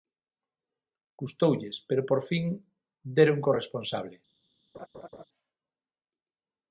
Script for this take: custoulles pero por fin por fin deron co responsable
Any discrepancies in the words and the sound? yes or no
yes